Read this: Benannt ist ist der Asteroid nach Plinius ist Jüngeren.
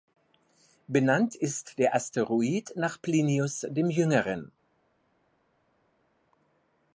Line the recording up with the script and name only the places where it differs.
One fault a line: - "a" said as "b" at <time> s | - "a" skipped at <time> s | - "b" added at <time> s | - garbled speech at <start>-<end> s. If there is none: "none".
- "ist" skipped at 1.8 s
- "ist" said as "dem" at 3.7 s